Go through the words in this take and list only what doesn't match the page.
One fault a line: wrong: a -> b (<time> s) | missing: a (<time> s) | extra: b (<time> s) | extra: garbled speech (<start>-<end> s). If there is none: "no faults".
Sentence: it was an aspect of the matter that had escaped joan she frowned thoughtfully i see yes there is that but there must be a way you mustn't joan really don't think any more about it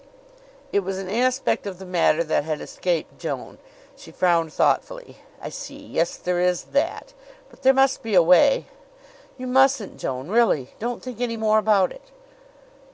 no faults